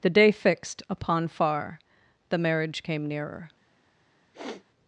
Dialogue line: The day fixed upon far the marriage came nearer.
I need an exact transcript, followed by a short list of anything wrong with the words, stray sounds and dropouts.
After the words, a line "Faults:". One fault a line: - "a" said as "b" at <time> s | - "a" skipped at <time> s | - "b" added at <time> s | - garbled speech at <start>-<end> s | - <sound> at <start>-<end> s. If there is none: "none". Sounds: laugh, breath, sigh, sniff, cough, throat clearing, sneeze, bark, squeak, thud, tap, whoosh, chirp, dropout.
The day fixed upon far the marriage came nearer.
Faults:
- sniff at 4.3-4.6 s